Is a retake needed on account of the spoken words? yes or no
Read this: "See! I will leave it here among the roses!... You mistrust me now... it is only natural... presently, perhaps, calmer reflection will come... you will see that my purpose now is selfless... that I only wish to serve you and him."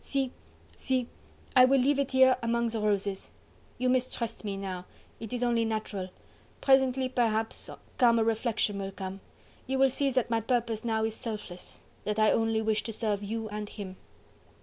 yes